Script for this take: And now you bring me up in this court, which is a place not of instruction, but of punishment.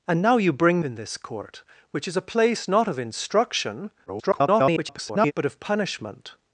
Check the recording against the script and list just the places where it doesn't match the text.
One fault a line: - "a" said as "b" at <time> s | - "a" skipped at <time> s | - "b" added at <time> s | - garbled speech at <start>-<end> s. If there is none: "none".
- "me up" skipped at 0.8 s
- garbled speech at 4.1-5.3 s